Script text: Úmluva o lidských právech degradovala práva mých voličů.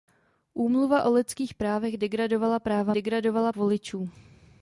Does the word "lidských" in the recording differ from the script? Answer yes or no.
no